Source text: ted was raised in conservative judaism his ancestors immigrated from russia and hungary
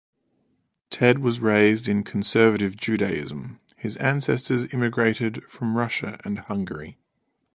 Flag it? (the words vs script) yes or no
no